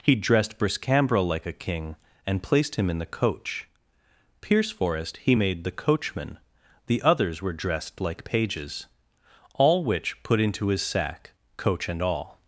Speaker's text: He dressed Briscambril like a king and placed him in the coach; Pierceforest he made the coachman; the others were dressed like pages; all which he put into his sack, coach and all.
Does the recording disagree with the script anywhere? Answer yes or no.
yes